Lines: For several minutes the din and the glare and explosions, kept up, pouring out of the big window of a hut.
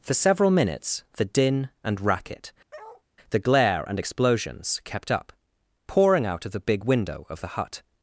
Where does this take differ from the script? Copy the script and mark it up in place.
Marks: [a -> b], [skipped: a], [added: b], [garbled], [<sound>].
For several minutes the din and [added: racket] [bark] the glare and explosions, kept up, pouring out of the big window of [a -> the] hut.